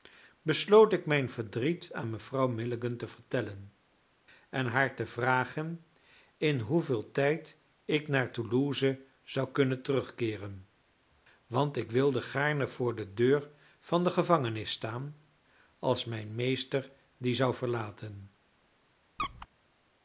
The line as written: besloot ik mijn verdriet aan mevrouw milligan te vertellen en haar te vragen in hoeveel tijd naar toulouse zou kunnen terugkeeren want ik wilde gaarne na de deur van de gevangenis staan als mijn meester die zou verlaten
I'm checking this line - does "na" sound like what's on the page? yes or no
no